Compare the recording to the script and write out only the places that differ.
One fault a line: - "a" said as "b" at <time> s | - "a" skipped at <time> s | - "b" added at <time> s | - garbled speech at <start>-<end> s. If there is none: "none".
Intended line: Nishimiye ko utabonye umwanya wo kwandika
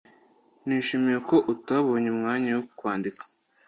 none